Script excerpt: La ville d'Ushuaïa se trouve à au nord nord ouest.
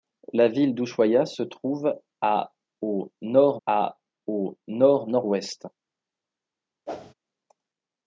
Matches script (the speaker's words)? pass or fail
fail